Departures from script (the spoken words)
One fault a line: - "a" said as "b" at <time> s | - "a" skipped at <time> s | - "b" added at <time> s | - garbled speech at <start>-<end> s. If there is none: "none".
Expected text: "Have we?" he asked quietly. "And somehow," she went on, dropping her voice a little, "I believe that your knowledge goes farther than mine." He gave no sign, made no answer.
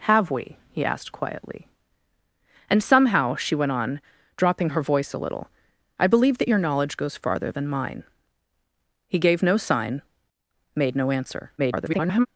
- garbled speech at 11.6-12.3 s